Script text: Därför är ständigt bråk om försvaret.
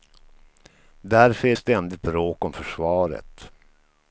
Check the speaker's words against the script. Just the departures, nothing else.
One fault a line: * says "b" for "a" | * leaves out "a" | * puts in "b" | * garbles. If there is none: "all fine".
all fine